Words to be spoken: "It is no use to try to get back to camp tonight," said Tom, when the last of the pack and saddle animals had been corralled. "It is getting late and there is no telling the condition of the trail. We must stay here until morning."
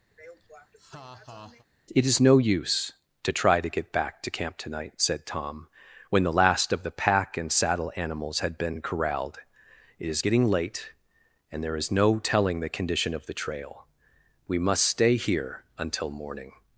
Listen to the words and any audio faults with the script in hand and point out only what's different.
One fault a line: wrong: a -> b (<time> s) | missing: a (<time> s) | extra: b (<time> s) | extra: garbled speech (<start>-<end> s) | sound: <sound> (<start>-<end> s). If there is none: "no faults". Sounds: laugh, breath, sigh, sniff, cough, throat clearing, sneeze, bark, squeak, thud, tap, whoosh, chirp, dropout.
sound: laugh (0.1-1.7 s)